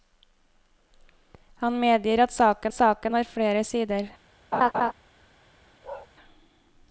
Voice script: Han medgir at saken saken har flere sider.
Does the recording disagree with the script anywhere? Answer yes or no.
no